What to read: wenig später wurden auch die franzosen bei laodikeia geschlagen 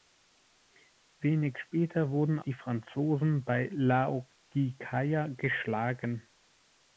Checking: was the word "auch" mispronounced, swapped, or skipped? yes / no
yes